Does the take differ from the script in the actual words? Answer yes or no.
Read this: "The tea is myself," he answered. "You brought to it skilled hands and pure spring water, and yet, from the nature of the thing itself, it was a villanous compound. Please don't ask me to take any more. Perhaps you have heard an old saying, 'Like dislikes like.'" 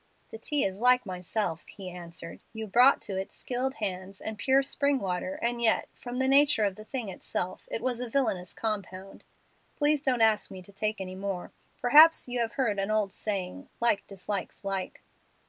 yes